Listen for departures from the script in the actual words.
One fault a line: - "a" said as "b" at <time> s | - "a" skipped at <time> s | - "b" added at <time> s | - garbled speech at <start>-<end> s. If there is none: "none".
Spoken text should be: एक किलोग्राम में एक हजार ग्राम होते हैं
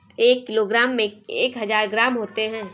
none